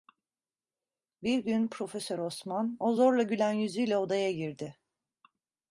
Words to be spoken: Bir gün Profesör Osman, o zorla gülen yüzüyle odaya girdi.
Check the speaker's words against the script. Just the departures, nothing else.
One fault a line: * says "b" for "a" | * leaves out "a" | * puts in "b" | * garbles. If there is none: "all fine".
all fine